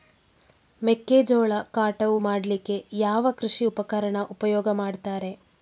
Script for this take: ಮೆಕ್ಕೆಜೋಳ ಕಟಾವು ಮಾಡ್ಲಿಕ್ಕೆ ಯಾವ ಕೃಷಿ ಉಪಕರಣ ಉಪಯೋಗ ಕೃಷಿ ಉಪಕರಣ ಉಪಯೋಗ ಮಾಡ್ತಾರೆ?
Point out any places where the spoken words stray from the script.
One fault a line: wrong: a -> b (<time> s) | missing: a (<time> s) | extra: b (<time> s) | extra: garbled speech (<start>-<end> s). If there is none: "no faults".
missing: ಕೃಷಿ ಉಪಕರಣ ಉಪಯೋಗ (4.7 s)